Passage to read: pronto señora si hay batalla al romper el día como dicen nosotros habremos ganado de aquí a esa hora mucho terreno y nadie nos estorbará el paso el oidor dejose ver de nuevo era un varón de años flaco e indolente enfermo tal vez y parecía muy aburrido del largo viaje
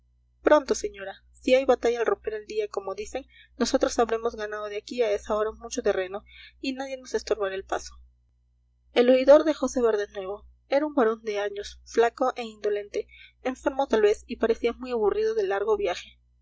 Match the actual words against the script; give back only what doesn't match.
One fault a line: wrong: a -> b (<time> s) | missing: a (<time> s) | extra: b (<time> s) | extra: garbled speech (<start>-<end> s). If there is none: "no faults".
no faults